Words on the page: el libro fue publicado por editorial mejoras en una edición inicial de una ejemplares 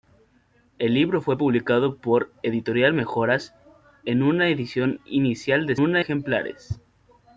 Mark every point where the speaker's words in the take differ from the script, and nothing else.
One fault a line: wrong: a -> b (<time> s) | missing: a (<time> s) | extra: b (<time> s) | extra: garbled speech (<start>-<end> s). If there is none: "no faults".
no faults